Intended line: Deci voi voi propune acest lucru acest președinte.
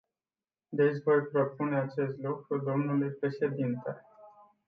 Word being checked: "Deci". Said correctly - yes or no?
yes